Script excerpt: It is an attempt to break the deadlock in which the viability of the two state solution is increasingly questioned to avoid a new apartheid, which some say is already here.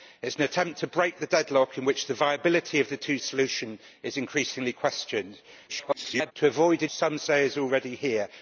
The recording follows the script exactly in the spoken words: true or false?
false